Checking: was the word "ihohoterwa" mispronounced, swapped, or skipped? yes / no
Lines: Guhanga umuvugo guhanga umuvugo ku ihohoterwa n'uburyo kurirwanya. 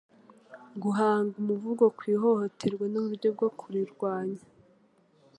no